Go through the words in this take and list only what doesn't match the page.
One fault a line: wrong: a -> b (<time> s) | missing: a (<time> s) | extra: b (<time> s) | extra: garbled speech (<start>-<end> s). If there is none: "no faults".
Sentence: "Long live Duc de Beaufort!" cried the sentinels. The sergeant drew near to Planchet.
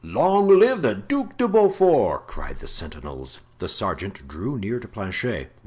extra: the (0.8 s)